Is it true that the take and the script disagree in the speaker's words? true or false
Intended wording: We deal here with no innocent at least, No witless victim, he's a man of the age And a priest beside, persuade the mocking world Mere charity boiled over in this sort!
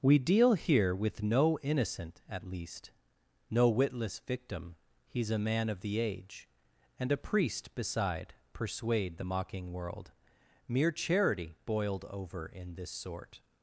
false